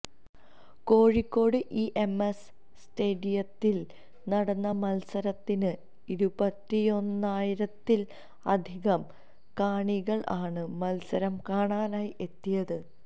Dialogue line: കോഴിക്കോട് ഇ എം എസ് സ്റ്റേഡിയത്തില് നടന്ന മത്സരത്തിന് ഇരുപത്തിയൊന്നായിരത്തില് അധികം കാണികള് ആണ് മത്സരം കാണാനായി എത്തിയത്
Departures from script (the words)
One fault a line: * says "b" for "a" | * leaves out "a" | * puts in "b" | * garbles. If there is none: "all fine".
all fine